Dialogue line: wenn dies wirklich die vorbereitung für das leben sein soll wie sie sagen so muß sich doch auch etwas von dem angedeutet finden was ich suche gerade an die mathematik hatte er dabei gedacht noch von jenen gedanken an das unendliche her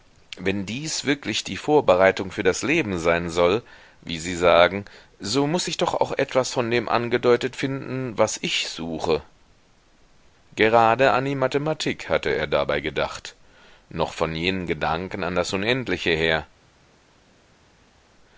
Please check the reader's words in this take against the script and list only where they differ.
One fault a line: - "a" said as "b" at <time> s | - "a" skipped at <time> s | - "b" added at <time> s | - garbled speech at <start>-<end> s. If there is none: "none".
none